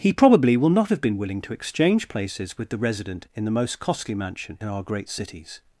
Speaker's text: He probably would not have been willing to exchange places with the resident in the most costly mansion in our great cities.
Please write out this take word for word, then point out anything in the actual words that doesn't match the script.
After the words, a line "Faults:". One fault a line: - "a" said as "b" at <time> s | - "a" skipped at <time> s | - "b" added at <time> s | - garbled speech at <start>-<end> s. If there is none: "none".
He probably will not have been willing to exchange places with the resident in the most costly mansion in our great cities.
Faults:
- "would" said as "will" at 0.6 s